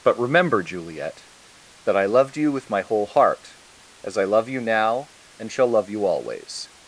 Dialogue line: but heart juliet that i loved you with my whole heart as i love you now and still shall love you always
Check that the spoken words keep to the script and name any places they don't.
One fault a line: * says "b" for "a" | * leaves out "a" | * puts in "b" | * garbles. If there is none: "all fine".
* says "remember" for "heart"
* leaves out "still"